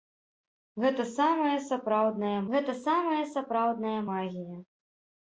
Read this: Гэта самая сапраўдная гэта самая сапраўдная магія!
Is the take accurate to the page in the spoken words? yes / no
yes